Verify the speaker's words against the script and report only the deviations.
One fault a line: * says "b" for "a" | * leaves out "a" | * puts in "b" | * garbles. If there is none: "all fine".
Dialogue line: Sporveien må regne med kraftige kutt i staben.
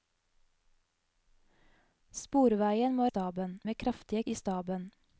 * says "staben" for "regne"
* leaves out "kutt"